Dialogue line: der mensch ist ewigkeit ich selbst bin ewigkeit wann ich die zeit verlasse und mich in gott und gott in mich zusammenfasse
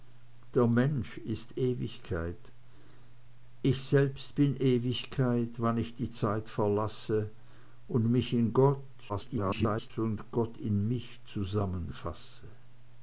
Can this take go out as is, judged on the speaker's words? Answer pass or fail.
fail